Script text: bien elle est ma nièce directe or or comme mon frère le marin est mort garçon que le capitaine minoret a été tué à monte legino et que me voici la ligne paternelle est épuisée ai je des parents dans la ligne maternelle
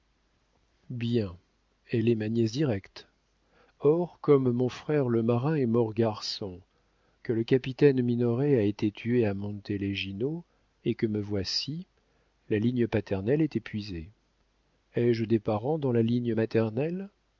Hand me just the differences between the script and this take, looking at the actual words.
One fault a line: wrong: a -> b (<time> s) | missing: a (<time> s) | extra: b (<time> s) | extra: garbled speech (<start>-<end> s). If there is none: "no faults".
missing: or (4.2 s)